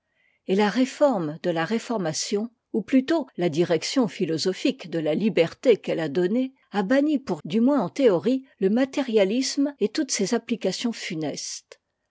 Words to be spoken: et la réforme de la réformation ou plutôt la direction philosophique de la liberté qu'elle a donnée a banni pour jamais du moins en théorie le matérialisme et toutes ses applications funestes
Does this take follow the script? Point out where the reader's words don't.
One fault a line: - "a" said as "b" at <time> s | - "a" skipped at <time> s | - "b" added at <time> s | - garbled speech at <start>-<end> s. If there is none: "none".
- "jamais" skipped at 7.4 s